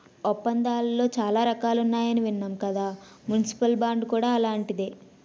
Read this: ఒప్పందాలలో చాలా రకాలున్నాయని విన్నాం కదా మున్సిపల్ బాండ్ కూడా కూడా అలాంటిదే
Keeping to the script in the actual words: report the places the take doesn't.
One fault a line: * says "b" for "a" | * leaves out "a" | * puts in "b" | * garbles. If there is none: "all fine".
* leaves out "కూడా"